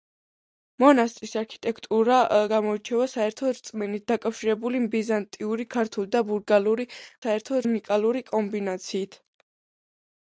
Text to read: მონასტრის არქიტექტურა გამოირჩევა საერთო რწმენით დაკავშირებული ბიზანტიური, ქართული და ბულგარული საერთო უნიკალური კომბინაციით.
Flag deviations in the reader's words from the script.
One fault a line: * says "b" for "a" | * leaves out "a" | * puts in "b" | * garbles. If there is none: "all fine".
all fine